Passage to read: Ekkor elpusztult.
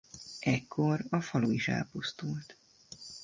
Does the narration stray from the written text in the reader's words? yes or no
yes